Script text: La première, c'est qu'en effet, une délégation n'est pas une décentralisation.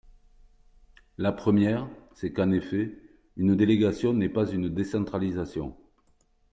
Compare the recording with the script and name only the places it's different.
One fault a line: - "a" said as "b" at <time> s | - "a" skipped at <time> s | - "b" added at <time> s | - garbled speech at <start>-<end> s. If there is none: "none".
none